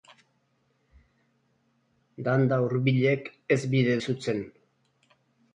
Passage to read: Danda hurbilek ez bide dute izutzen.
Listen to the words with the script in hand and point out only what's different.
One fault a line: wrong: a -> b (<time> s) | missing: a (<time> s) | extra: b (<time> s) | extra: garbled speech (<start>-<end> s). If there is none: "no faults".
missing: dute (4.0 s)